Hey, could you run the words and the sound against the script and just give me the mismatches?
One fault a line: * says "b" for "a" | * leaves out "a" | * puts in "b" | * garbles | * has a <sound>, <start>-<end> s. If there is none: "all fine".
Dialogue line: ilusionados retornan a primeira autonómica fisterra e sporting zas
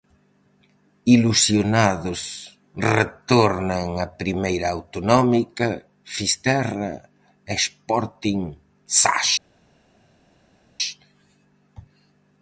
all fine